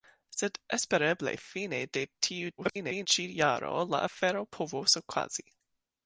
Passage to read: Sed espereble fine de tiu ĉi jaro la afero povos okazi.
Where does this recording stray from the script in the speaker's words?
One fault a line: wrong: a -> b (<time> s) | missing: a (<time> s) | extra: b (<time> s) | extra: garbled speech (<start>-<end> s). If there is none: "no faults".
extra: garbled speech (2.6-3.1 s)